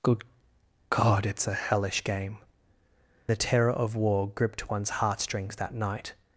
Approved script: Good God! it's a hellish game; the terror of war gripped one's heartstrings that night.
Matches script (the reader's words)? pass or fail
pass